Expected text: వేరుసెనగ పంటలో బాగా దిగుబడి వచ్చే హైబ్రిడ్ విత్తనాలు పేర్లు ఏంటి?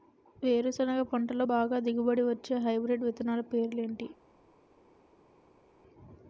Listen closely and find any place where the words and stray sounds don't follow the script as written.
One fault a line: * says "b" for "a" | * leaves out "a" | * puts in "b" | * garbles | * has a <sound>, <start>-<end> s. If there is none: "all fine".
all fine